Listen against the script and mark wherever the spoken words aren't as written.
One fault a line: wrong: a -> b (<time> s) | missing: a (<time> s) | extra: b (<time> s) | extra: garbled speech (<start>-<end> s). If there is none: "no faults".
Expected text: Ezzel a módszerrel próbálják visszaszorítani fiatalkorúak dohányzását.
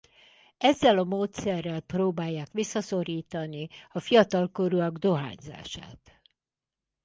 extra: a (3.9 s)